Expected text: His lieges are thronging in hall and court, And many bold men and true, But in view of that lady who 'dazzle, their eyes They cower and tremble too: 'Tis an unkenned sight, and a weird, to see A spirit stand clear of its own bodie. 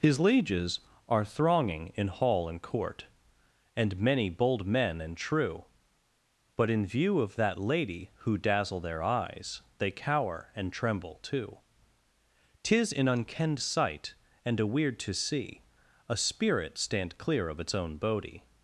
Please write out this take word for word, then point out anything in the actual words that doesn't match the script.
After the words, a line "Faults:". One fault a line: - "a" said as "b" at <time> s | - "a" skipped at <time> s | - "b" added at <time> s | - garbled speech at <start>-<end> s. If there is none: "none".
His lieges are thronging in hall and court, And many bold men and true, But in view of that lady who 'dazzle, their eyes They cower and tremble too: 'Tis an unkenned sight, and a weird, to see A spirit stand clear of its own bodie.
Faults:
none